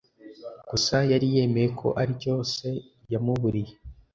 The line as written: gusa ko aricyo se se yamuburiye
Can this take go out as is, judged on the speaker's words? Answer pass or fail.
fail